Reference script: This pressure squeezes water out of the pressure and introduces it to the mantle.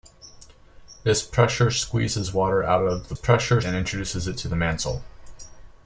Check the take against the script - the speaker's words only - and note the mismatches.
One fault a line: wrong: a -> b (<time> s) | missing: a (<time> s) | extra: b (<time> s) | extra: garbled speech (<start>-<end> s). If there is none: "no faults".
no faults